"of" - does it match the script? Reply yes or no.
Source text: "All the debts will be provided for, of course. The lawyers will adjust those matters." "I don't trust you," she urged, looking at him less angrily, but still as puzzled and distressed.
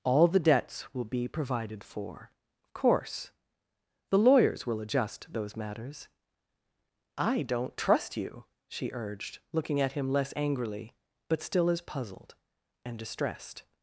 yes